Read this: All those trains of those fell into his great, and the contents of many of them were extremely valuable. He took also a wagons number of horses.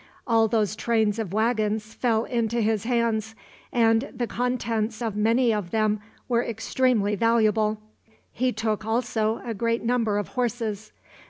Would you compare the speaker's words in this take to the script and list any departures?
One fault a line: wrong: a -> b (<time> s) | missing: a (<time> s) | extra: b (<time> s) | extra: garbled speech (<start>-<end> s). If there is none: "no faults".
wrong: those -> wagons (1.3 s)
wrong: great -> hands (2.9 s)
wrong: wagons -> great (9.5 s)